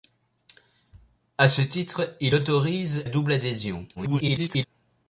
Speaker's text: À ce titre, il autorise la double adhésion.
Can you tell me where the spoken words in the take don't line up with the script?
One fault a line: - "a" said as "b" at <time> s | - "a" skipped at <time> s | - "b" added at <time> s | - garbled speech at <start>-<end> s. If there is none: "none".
- "la" skipped at 3.0 s
- garbled speech at 4.0-4.6 s